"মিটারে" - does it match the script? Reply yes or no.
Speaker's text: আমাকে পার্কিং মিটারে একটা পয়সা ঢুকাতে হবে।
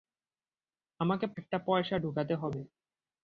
no